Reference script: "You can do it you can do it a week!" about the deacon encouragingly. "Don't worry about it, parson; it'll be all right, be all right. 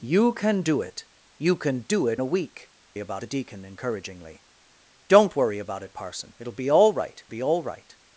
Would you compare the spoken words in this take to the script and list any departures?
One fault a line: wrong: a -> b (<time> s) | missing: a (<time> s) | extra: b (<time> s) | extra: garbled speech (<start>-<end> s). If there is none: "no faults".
no faults